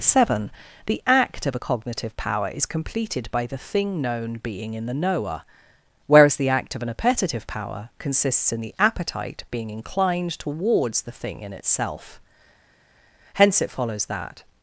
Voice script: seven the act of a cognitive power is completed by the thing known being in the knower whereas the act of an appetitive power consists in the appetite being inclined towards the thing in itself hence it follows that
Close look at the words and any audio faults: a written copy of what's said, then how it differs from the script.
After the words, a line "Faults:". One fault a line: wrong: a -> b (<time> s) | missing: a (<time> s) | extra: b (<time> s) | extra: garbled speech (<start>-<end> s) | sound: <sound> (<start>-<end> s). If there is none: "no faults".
seven the act of a cognitive power is completed by the thing known being in the knower whereas the act of an appetitive power consists in the appetite being inclined towards the thing in itself hence it follows that
Faults:
no faults